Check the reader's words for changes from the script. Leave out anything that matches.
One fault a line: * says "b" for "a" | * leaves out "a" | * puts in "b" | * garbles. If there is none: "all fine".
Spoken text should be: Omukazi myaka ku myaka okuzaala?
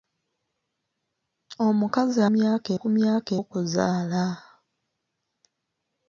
all fine